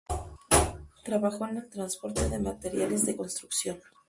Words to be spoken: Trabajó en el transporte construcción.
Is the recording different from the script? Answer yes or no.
yes